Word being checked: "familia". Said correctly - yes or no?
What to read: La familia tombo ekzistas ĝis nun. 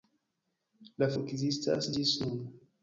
no